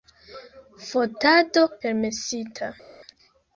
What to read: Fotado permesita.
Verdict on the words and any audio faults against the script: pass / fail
pass